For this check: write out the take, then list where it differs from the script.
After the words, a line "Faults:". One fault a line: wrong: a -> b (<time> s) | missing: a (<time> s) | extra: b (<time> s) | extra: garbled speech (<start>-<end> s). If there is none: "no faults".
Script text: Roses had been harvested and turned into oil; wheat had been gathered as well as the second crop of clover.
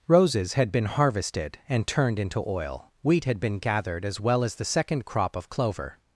Roses had been harvested and turned into oil; wheat had been gathered as well as the second crop of clover.
Faults:
no faults